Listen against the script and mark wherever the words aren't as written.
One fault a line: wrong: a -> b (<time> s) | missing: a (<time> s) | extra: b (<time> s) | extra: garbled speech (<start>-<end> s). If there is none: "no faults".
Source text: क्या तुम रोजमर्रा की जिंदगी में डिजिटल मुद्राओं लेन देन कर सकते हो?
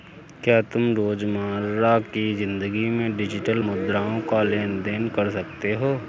extra: का (4.2 s)